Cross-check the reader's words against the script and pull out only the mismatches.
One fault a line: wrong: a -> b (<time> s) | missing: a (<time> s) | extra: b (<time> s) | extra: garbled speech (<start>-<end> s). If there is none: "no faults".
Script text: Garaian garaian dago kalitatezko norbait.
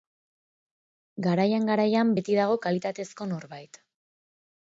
extra: beti (2.2 s)